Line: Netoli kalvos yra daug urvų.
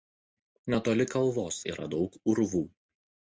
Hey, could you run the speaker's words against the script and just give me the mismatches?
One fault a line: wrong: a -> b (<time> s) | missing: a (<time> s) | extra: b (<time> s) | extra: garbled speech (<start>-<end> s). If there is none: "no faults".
no faults